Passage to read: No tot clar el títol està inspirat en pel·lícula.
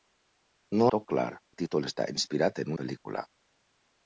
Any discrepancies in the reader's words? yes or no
no